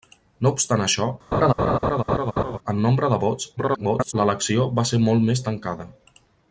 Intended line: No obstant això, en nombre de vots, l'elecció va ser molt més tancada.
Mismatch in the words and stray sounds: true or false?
true